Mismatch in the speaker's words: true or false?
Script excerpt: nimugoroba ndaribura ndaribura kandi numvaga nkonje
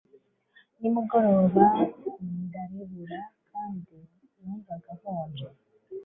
true